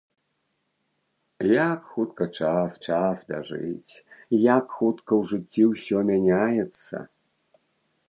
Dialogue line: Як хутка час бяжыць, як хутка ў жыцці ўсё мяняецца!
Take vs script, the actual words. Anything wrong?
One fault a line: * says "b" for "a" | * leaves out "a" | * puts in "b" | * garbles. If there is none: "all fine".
* puts in "час"